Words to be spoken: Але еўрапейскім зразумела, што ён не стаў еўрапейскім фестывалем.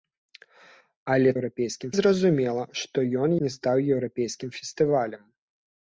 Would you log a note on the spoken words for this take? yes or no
no